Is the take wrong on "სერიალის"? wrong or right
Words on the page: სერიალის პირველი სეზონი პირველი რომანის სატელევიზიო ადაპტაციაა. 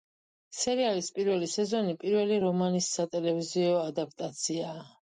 right